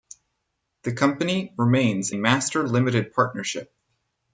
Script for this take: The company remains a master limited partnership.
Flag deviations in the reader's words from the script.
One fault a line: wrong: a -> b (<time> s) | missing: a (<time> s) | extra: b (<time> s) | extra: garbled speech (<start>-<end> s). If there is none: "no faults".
missing: a (2.1 s)